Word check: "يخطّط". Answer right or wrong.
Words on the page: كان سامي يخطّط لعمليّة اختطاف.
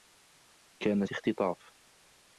wrong